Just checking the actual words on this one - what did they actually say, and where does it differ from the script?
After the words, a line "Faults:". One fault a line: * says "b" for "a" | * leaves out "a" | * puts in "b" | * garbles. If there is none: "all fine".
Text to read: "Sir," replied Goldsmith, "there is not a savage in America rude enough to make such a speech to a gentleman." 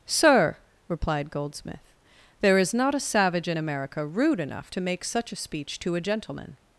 "Sir," replied Goldsmith, "there is not a savage in America rude enough to make such a speech to a gentleman."
Faults:
all fine